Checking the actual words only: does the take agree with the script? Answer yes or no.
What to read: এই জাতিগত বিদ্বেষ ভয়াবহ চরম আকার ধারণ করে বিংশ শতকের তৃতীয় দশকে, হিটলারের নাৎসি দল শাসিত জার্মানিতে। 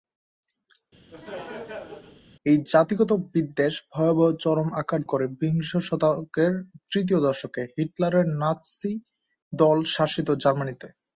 no